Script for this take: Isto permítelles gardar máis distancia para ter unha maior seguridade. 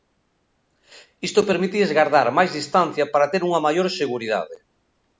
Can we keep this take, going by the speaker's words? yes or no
yes